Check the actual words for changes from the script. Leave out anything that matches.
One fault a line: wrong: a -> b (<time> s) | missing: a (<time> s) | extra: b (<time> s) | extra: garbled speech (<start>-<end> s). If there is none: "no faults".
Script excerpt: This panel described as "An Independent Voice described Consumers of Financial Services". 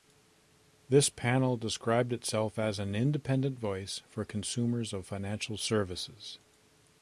extra: itself (2.1 s)
wrong: described -> for (4.1 s)